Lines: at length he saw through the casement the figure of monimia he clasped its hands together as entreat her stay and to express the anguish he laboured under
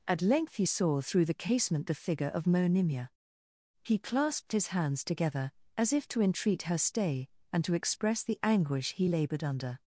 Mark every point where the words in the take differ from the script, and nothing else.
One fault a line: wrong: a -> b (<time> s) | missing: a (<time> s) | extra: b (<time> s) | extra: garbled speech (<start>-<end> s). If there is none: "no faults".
wrong: its -> his (4.5 s)
extra: if to (5.9 s)